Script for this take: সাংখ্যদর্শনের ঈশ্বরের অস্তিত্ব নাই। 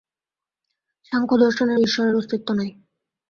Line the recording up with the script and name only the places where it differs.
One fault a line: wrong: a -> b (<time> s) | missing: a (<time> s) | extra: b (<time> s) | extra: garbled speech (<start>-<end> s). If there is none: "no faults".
no faults